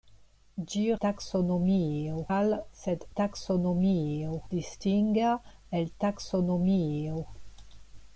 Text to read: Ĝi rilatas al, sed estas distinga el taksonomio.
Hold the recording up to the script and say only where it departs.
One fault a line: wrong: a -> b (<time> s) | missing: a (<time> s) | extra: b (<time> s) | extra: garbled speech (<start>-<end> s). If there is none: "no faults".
wrong: rilatas -> taksonomio (1.1 s)
wrong: estas -> taksonomio (3.2 s)